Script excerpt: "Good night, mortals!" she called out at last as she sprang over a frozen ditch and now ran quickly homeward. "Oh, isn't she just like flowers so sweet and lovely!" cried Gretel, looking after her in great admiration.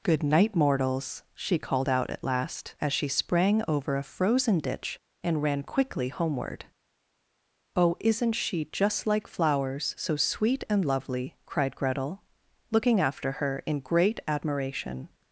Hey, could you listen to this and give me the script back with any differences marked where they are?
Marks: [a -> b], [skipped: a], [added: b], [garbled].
"Good night, mortals!" she called out at last as she sprang over a frozen ditch and [skipped: now] ran quickly homeward. "Oh, isn't she just like flowers so sweet and lovely!" cried Gretel, looking after her in great admiration.